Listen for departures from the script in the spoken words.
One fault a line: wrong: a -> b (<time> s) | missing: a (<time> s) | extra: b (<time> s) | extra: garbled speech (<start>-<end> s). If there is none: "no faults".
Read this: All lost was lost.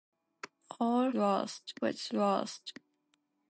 no faults